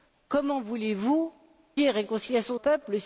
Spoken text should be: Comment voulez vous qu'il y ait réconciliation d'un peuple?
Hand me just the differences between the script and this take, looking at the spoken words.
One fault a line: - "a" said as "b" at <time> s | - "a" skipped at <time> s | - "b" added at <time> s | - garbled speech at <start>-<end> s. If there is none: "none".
- "qu'il" skipped at 1.3 s
- "d'un" skipped at 2.6 s